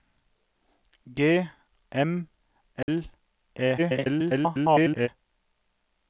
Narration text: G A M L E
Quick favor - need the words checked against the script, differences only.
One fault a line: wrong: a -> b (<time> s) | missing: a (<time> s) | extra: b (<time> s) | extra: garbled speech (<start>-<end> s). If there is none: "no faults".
missing: A (1.5 s)
extra: garbled speech (3.8-5.1 s)